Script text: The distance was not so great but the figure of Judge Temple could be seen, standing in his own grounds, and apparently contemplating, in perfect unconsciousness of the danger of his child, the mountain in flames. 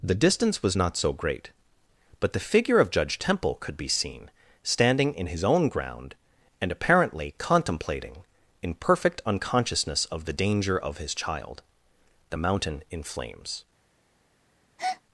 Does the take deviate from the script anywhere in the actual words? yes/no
yes